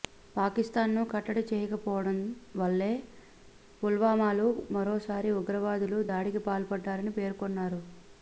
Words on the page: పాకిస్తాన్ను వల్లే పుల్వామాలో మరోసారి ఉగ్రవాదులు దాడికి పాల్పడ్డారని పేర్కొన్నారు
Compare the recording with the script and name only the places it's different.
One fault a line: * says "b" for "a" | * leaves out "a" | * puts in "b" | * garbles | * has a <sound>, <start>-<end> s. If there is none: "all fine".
* puts in "కట్టడి చేయకపోవడం"